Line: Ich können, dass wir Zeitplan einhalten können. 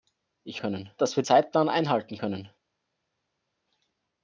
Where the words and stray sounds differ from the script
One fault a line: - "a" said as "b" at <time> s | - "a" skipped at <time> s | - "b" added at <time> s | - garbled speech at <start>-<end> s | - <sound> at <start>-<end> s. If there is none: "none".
none